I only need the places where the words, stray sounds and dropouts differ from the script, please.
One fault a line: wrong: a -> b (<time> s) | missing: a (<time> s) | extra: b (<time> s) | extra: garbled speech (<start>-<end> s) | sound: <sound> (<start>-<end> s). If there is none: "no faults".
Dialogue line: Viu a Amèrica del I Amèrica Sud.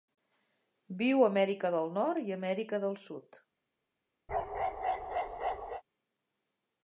extra: Nord (2.0 s)
extra: del (2.9 s)
sound: bark (4.3-5.8 s)